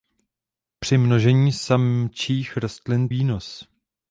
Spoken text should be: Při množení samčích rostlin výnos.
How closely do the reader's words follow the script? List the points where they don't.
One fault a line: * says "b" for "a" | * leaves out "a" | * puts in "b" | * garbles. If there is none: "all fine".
all fine